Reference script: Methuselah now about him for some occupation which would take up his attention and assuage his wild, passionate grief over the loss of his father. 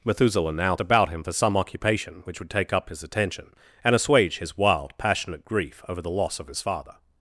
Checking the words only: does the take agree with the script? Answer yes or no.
yes